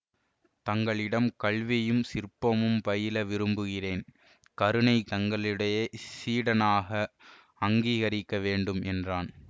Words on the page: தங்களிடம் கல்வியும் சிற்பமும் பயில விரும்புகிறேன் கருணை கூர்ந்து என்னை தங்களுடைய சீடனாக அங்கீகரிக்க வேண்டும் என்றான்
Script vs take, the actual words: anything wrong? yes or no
yes